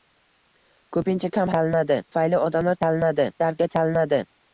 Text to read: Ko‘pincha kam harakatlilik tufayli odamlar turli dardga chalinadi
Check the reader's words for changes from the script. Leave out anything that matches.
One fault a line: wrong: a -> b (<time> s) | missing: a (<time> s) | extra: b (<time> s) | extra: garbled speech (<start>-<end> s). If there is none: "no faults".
wrong: harakatlilik -> chalinadi (1.6 s)
wrong: turli -> chalinadi (2.8 s)